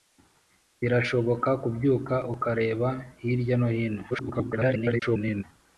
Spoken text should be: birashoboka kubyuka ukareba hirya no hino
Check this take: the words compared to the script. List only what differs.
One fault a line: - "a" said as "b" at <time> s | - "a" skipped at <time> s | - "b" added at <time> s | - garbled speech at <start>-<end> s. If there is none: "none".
- garbled speech at 4.1-5.4 s